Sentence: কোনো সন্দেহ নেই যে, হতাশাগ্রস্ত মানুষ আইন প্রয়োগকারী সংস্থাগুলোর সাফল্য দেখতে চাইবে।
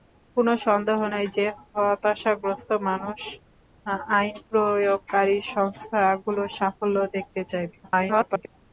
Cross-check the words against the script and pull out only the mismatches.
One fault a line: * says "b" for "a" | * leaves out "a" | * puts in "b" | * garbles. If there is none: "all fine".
* garbles